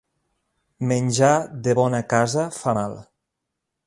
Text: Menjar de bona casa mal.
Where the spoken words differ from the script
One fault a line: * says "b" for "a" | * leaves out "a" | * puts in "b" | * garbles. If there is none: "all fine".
* puts in "fa"